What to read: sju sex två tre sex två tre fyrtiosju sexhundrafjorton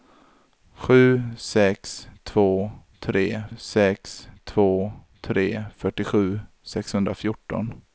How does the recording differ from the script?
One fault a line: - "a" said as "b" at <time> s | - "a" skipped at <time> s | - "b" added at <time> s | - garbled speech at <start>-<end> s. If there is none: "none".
none